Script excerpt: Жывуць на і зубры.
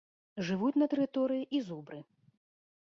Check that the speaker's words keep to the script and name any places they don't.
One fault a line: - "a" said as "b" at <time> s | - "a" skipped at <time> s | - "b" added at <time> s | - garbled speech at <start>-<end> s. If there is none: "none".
- "тэрыторыі" added at 1.0 s